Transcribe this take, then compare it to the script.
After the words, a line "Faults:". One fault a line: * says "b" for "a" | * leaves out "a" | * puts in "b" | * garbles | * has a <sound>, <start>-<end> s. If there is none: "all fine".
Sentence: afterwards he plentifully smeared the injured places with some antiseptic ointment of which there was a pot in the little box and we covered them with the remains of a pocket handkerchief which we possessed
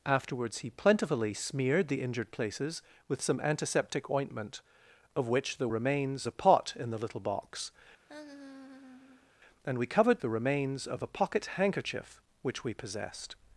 afterwards he plentifully smeared the injured places with some antiseptic ointment of which there remains a pot in the little box and we covered the remains of a pocket handkerchief which we possessed
Faults:
* says "remains" for "was"
* has a laugh, 8.1-9.3 s
* leaves out "them with"